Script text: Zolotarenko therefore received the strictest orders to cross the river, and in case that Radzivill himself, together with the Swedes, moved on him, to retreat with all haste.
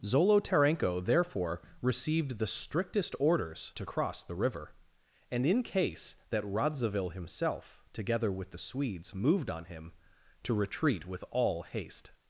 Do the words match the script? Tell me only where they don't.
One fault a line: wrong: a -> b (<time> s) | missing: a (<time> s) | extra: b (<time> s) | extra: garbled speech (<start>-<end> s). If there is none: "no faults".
no faults